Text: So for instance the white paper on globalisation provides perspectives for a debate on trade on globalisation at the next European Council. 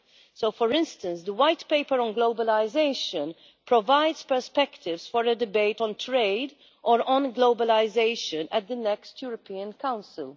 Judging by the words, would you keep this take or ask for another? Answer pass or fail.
fail